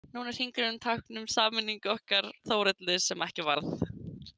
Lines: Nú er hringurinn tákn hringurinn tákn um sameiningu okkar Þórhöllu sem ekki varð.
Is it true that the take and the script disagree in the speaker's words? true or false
true